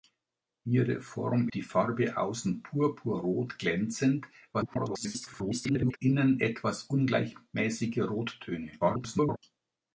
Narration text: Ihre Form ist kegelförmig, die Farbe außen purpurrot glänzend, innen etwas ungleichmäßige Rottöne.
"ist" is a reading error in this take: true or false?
true